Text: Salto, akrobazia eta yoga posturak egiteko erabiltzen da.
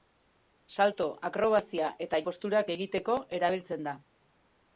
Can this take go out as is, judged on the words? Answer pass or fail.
fail